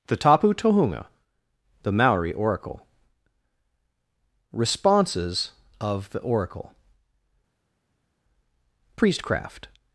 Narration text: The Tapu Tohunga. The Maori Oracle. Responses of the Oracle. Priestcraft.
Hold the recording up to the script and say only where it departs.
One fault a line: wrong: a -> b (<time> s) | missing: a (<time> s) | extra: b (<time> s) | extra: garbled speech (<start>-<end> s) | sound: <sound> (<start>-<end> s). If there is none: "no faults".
no faults